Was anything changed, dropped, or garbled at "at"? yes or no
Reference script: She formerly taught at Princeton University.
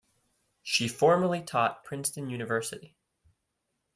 yes